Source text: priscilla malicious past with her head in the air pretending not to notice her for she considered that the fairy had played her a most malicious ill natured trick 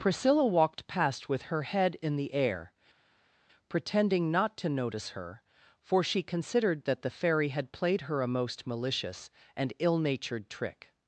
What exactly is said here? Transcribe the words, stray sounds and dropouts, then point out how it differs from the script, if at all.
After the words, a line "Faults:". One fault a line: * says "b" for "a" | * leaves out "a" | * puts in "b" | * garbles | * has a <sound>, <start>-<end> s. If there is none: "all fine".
priscilla walked past with her head in the air pretending not to notice her for she considered that the fairy had played her a most malicious and ill natured trick
Faults:
* says "walked" for "malicious"
* puts in "and"